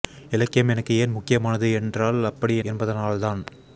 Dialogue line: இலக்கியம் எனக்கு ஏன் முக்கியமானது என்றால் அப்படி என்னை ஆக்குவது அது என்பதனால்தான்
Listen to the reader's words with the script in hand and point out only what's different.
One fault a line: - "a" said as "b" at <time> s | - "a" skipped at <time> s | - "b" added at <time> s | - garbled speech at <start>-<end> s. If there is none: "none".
- "என்னை ஆக்குவது அது" skipped at 2.5 s